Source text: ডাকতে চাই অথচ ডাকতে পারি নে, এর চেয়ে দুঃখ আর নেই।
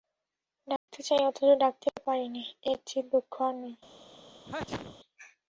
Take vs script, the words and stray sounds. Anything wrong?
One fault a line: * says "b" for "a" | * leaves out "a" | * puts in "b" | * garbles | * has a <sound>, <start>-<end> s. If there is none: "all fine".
* has a dropout, 0.8-0.9 s
* has a sneeze, 4.5-5.0 s